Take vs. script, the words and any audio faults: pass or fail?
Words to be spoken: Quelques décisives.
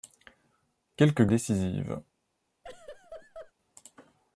fail